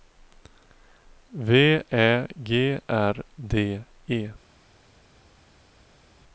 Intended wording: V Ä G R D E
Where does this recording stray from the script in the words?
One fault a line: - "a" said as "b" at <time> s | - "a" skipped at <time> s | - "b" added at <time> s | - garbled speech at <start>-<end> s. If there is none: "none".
none